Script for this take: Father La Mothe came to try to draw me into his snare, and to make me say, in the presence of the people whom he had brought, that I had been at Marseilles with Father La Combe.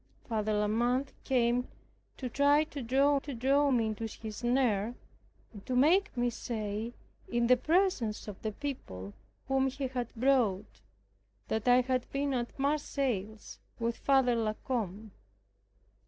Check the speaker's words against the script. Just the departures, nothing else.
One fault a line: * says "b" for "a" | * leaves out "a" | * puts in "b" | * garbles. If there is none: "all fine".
* puts in "to draw"